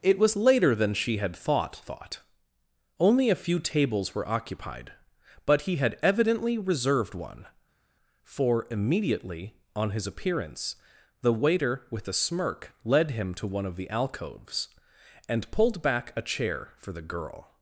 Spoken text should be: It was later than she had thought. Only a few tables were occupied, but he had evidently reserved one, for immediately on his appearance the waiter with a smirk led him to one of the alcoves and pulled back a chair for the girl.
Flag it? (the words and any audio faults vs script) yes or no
yes